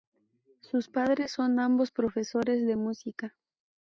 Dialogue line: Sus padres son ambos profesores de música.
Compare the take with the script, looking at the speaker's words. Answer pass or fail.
pass